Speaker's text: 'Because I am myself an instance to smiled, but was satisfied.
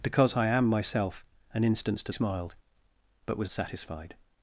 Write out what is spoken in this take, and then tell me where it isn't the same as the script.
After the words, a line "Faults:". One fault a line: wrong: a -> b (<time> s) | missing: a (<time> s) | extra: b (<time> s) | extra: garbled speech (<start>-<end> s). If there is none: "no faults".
'Because I am myself an instance to smiled, but was satisfied.
Faults:
no faults